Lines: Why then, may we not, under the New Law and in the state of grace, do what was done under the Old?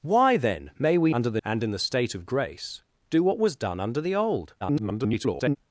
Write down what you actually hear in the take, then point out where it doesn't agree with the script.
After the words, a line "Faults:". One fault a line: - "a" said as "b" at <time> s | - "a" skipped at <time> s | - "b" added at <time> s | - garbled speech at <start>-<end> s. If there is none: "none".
Why then, may we under the And in the state of grace, do what was done under the Old? [garbled]
Faults:
- "not" skipped at 1.1 s
- "New Law" skipped at 1.4 s
- garbled speech at 4.6-5.6 s